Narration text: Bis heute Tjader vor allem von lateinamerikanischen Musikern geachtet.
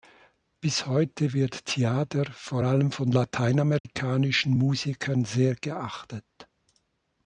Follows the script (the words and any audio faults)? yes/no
no